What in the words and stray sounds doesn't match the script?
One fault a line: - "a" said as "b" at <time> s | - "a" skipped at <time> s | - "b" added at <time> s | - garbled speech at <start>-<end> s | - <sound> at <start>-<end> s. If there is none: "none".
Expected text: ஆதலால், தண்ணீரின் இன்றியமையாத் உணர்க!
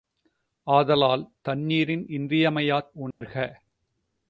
- dropout at 3.1-3.2 s